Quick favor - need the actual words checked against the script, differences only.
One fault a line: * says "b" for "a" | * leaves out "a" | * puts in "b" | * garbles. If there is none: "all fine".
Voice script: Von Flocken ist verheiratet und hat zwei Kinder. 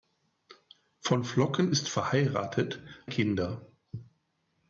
* leaves out "und hat zwei"